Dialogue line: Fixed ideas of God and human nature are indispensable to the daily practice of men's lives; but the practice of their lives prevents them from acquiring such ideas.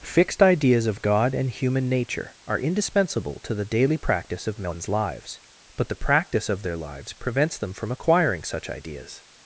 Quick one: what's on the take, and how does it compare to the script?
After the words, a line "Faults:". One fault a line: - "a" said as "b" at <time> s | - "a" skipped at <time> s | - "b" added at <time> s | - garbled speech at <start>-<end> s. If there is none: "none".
Fixed ideas of God and human nature are indispensable to the daily practice of men's lives; but the practice of their lives prevents them from acquiring such ideas.
Faults:
none